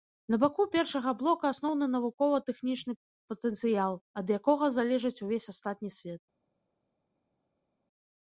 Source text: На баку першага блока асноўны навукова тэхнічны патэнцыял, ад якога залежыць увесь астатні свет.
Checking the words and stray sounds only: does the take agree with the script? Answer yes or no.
yes